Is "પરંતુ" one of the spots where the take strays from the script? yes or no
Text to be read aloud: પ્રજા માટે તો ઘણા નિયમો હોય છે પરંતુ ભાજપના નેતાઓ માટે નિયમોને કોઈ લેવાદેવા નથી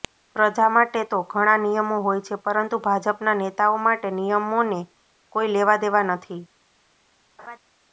no